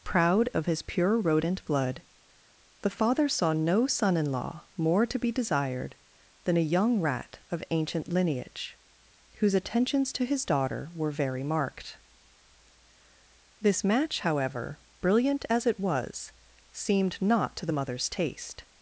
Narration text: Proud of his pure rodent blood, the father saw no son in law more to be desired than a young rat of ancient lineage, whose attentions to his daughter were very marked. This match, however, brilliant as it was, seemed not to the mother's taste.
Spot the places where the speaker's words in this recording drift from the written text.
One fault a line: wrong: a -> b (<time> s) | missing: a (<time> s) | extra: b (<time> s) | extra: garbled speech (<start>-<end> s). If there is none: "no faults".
no faults